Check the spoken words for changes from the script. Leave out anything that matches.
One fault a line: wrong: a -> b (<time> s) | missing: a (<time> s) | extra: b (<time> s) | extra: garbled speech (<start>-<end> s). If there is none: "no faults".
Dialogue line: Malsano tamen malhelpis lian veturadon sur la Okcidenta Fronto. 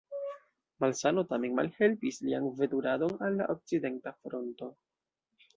wrong: sur -> al (3.3 s)